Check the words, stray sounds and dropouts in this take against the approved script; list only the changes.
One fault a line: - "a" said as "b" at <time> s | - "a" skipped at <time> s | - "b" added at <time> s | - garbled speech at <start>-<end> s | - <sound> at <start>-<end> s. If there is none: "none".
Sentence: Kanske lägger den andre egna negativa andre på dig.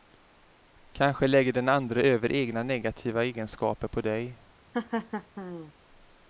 - "över" added at 2.0 s
- "andre" said as "egenskaper" at 3.2 s
- laugh at 4.7-5.7 s